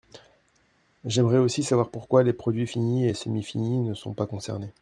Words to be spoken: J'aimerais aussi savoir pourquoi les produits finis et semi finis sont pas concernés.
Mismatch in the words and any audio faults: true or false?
true